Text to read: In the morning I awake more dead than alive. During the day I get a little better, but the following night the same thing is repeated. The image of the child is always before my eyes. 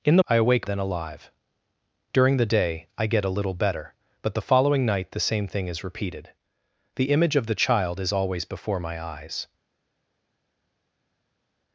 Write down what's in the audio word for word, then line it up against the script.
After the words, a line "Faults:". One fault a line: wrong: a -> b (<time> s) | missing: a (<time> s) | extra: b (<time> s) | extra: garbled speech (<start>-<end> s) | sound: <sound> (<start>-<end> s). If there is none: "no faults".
In the I awake than alive. During the day I get a little better, but the following night the same thing is repeated. The image of the child is always before my eyes.
Faults:
missing: morning (0.2 s)
missing: more dead (0.7 s)